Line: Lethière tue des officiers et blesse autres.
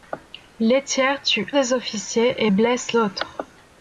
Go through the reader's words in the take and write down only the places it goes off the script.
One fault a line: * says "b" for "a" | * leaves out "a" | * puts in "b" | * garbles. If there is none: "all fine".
all fine